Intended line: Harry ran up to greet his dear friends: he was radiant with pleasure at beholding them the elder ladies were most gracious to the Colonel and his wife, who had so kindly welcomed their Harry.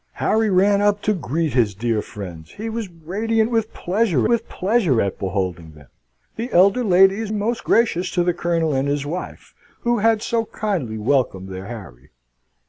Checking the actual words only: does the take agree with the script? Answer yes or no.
no